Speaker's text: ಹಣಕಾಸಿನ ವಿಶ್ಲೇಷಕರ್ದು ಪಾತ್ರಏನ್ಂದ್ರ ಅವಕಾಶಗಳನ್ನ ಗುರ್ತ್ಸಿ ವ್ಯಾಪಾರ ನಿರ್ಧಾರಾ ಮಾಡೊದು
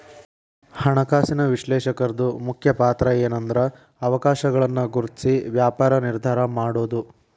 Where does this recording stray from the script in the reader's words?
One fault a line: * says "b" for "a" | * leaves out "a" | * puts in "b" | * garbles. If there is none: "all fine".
* puts in "ಮುಖ್ಯ"